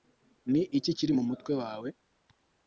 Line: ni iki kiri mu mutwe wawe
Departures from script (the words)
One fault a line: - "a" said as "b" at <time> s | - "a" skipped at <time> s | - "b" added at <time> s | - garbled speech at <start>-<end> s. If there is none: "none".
none